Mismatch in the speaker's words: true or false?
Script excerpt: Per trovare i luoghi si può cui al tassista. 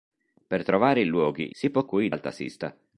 false